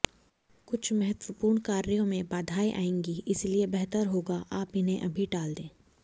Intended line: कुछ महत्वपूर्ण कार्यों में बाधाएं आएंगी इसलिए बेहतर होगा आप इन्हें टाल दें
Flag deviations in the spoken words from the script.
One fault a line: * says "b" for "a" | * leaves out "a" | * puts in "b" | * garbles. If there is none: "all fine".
* puts in "अभी"